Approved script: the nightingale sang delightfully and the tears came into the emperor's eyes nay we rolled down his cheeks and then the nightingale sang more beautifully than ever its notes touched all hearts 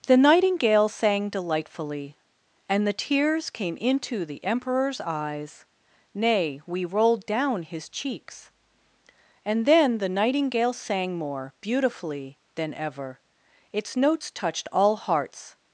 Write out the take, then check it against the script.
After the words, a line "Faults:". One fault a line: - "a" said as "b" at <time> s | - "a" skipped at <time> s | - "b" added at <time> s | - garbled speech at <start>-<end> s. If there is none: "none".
the nightingale sang delightfully and the tears came into the emperor's eyes nay we rolled down his cheeks and then the nightingale sang more beautifully than ever its notes touched all hearts
Faults:
none